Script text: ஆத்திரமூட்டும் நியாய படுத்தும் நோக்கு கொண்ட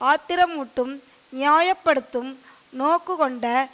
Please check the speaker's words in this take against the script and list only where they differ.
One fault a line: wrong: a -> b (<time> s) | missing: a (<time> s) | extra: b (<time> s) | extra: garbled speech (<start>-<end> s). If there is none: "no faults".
no faults